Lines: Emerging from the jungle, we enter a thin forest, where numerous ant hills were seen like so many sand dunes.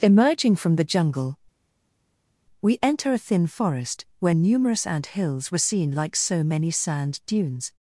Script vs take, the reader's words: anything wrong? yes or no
no